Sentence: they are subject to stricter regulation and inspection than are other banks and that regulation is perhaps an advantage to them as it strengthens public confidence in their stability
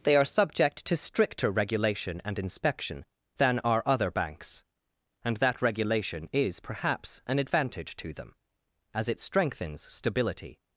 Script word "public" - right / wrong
wrong